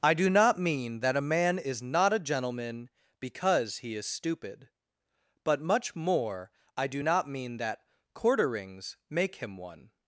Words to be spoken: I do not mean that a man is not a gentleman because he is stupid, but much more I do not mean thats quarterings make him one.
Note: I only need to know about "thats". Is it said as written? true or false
false